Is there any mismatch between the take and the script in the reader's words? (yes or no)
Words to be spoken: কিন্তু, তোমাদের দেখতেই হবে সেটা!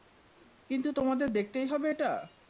yes